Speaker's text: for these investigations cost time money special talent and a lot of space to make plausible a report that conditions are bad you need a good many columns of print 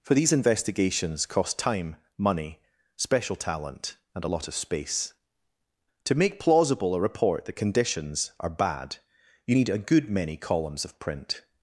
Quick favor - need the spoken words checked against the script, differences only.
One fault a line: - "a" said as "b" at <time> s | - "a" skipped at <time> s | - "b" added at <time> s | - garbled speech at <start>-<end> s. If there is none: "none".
none